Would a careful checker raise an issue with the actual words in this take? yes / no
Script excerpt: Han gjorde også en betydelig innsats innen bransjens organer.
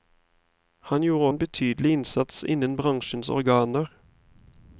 yes